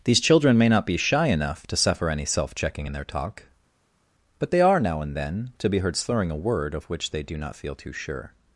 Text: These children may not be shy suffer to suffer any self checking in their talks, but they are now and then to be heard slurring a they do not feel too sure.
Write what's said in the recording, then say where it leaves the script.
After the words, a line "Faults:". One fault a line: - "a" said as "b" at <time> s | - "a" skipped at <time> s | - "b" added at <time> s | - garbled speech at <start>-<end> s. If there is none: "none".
These children may not be shy enough to suffer any self checking in their talk, but they are now and then to be heard slurring a word of which they do not feel too sure.
Faults:
- "suffer" said as "enough" at 1.3 s
- "talks" said as "talk" at 3.0 s
- "word of which" added at 6.4 s